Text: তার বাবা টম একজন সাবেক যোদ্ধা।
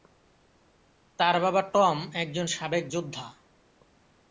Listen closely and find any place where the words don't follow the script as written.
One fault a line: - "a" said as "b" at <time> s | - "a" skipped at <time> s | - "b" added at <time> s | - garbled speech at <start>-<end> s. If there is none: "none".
none